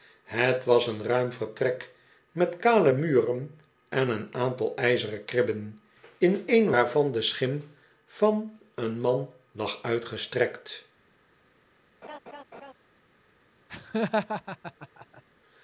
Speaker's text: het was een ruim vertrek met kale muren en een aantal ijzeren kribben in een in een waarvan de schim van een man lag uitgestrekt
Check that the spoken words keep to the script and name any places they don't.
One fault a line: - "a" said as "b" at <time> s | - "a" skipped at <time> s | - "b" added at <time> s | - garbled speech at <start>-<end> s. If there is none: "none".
- "in een" skipped at 6.7 s